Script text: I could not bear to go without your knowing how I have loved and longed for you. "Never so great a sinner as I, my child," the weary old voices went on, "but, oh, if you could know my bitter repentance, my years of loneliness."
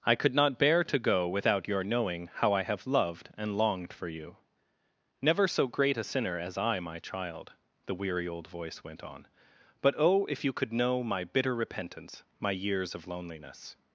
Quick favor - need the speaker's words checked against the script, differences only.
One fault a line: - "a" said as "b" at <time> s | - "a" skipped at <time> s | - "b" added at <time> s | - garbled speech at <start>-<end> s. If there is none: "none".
- "voices" said as "voice" at 8.5 s